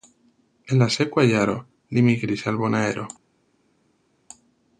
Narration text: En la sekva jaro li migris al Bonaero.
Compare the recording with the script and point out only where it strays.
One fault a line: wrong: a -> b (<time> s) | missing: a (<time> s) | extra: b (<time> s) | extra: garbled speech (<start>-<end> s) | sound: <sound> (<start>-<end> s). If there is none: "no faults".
no faults